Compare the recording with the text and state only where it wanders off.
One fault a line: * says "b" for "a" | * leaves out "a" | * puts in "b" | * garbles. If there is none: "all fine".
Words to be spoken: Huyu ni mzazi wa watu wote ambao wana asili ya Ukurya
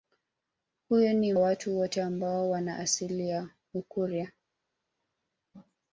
* leaves out "mzazi wa"